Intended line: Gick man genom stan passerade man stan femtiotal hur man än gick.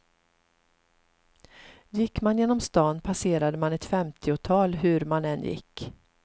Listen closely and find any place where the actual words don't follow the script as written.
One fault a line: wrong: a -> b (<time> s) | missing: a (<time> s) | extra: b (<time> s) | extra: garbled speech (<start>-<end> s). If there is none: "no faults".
wrong: stan -> ett (3.7 s)